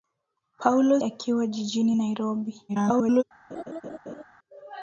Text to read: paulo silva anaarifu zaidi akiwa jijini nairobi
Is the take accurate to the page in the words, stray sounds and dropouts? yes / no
no